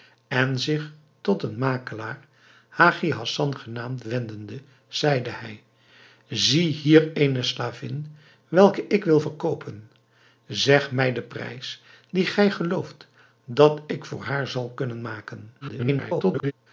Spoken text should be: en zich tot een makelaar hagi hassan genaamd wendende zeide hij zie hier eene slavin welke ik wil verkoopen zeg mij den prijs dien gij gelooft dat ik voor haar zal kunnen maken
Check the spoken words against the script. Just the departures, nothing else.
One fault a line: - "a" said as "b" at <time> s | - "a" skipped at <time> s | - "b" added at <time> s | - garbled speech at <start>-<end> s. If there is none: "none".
- garbled speech at 15.6-16.5 s